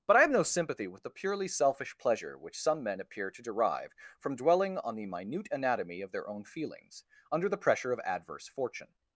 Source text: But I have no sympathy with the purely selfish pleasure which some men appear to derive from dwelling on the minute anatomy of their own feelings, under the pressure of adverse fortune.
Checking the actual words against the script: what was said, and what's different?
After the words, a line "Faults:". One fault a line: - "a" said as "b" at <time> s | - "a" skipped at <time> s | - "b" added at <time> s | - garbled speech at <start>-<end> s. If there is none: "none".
But I have no sympathy with the purely selfish pleasure which some men appear to derive from dwelling on the minute anatomy of their own feelings, under the pressure of adverse fortune.
Faults:
none